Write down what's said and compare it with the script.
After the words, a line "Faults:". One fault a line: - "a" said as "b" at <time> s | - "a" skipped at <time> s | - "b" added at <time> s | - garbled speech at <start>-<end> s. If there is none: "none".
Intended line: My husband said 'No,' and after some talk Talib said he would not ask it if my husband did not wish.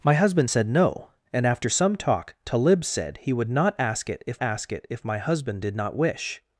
My husband said 'No,' and after some talk Talib said he would not ask it if ask it if my husband did not wish.
Faults:
- "ask it if" added at 4.4 s